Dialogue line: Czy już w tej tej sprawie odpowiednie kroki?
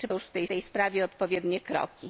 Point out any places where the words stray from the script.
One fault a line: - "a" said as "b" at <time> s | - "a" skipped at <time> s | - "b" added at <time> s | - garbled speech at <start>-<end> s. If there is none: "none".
none